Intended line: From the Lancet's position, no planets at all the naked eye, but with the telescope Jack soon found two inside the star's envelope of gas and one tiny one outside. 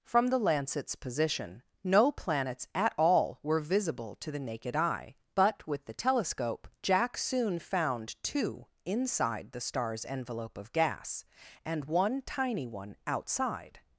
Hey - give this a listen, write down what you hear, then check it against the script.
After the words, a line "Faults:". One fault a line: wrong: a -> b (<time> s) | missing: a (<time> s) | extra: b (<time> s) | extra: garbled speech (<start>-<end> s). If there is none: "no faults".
From the Lancet's position, no planets at all were visible to the naked eye, but with the telescope Jack soon found two inside the star's envelope of gas and one tiny one outside.
Faults:
extra: were visible to (3.4 s)